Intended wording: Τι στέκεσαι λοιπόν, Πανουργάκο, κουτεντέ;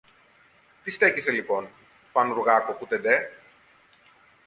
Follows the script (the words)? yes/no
yes